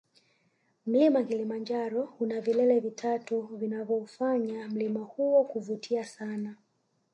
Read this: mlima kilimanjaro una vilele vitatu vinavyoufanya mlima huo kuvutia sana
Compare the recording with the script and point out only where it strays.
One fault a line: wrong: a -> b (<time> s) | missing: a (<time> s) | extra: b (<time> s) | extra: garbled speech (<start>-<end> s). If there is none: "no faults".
no faults